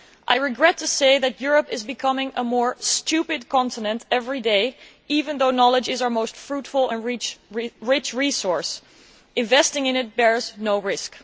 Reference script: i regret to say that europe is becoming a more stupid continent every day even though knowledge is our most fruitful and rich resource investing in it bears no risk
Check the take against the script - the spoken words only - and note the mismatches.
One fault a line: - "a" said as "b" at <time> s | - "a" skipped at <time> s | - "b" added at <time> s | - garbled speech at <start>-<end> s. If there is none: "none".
none